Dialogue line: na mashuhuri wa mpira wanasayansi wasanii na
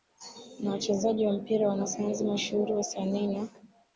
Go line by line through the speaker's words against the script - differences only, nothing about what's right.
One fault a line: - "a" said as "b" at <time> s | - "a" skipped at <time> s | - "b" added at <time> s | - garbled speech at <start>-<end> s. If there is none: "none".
- "mashuhuri" said as "wachezaji" at 0.7 s
- "mashuhuri" added at 2.2 s